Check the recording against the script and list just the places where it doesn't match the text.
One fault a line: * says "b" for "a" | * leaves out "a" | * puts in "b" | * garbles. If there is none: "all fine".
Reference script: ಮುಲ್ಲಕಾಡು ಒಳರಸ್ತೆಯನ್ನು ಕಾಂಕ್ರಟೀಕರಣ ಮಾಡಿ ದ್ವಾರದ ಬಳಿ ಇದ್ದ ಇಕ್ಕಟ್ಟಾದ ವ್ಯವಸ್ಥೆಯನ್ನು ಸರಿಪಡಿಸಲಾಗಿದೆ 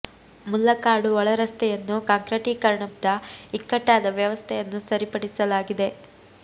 * leaves out "ಮಾಡಿ ದ್ವಾರದ ಬಳಿ"